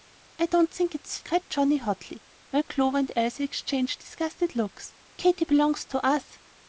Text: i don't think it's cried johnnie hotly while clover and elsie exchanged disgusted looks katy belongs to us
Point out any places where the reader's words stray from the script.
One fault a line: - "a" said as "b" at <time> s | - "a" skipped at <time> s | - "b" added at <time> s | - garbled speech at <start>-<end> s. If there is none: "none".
none